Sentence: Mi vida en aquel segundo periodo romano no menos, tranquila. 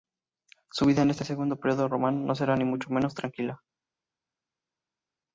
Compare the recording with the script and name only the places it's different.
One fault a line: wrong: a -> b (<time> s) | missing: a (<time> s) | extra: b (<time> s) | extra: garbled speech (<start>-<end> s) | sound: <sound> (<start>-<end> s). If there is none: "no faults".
wrong: Mi -> Su (0.7 s)
wrong: aquel -> este (1.1 s)
extra: será ni mucho (2.3 s)